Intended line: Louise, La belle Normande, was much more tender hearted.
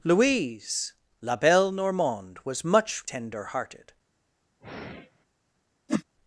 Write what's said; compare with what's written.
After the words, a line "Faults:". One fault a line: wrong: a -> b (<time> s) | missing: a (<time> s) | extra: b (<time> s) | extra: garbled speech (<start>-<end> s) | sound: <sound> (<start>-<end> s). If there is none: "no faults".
Louise, La belle Normande, was much tender hearted.
Faults:
missing: more (3.1 s)
sound: sigh (4.6-5.3 s)
sound: whoosh (5.9-6.0 s)